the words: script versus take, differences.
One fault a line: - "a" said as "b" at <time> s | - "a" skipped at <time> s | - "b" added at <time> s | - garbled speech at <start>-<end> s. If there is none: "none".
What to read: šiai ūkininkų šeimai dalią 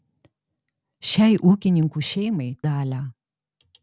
none